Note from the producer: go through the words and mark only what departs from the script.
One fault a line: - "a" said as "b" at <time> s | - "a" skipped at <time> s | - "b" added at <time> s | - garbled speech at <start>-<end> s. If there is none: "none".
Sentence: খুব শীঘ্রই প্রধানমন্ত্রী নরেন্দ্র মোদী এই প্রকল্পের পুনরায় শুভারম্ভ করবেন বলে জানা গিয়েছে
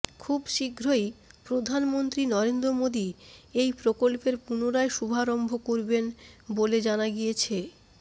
none